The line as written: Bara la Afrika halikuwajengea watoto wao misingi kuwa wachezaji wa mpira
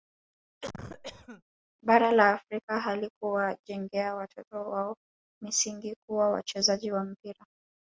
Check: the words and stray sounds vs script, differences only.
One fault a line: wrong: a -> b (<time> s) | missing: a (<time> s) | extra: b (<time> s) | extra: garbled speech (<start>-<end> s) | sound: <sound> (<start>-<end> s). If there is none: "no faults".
sound: cough (0.6-1.4 s)